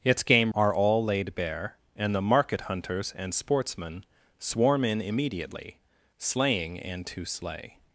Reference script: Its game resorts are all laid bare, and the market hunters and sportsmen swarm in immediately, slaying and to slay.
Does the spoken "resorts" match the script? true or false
false